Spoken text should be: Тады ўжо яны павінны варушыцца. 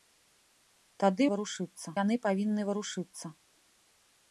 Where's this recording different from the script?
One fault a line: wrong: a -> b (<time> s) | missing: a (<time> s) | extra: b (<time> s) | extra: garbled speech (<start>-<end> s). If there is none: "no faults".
wrong: ўжо -> варушыцца (1.3 s)